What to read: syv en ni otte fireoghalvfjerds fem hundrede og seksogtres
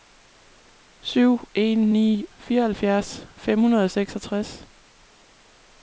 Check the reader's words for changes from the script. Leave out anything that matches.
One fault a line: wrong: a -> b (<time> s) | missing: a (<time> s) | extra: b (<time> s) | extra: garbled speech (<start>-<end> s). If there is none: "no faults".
missing: otte (2.2 s)